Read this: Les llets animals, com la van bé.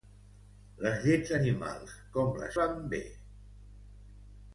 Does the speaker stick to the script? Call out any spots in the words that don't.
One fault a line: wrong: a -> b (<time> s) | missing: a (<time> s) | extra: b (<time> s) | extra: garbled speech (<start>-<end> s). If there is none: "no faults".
no faults